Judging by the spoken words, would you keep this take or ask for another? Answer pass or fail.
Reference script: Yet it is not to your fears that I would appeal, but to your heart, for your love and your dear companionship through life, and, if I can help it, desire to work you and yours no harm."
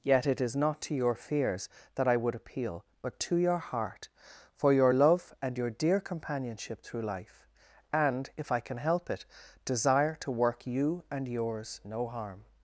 pass